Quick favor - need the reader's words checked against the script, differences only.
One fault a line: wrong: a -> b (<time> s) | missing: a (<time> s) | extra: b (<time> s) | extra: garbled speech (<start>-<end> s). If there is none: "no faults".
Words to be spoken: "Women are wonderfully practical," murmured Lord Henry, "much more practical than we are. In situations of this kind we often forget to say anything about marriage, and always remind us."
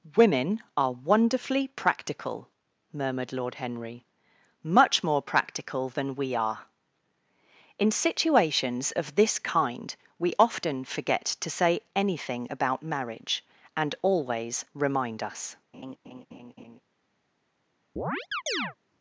no faults